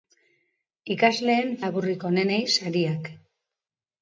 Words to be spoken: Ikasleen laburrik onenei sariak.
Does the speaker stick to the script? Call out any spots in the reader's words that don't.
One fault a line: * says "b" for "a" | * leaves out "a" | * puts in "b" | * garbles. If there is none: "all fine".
all fine